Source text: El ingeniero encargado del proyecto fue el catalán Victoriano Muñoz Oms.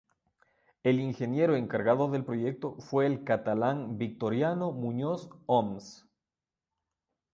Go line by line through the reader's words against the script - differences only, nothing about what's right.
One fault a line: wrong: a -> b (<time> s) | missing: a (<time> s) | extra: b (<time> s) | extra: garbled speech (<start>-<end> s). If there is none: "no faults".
no faults